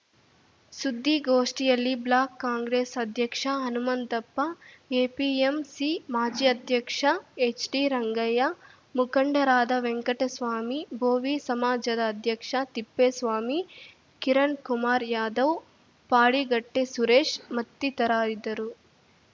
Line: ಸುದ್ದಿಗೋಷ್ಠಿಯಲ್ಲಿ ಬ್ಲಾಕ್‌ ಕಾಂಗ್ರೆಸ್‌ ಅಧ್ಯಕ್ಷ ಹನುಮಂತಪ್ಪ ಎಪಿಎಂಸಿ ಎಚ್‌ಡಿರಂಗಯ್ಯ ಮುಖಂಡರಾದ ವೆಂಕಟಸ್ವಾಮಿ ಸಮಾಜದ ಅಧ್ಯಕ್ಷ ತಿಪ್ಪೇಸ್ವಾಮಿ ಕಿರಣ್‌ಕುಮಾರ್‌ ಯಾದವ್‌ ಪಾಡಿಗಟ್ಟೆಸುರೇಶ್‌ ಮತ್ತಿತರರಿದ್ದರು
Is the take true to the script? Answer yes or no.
no